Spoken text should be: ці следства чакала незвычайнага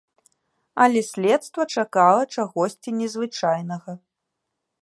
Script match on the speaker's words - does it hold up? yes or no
no